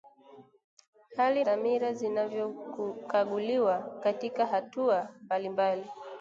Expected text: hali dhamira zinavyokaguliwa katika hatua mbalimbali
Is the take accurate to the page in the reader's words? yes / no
yes